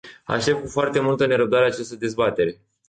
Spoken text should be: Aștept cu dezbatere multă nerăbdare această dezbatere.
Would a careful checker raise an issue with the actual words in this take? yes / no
yes